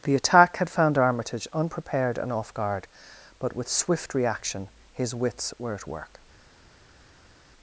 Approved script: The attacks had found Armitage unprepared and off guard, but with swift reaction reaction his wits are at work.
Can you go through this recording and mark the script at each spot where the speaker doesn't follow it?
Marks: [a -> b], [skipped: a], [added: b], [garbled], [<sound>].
The [attacks -> attack] had found Armitage unprepared and off guard, but with swift reaction [skipped: reaction] his wits [are -> were] at work.